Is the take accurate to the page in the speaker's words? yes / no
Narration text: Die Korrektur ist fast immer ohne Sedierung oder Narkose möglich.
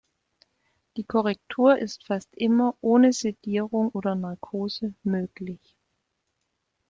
yes